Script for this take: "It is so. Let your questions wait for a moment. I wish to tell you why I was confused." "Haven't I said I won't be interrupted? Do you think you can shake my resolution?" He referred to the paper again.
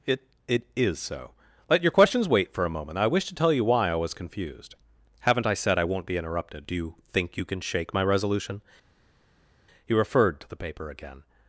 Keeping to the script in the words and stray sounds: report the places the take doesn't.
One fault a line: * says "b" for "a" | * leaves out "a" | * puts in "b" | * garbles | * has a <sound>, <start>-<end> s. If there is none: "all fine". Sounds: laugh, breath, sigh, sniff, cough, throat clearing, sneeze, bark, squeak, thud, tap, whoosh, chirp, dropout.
* puts in "it"